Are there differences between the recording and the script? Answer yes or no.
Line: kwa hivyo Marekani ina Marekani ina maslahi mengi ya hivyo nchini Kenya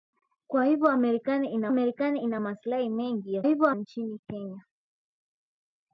no